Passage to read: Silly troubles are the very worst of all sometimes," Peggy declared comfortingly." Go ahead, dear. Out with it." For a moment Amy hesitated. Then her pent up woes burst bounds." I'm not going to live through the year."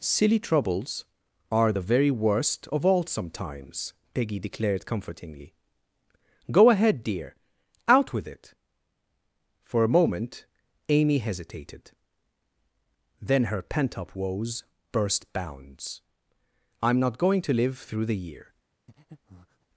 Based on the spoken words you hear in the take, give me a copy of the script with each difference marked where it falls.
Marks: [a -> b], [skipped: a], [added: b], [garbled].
Silly troubles are the very worst of all sometimes," Peggy declared comfortingly." Go ahead, dear. Out with it." For a moment Amy hesitated. Then her pent up woes burst bounds." I'm not going to live through the year."